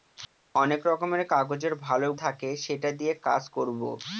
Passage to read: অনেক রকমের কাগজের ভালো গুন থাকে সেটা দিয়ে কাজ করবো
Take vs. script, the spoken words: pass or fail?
fail